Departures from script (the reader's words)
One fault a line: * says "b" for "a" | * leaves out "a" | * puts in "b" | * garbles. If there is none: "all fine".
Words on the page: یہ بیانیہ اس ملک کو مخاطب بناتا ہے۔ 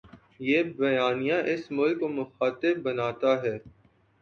all fine